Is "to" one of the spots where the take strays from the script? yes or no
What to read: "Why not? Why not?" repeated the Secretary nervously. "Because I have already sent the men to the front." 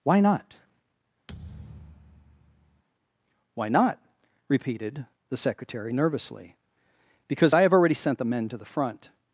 no